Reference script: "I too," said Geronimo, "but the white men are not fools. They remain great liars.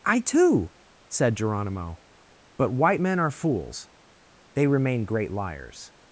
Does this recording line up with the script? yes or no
no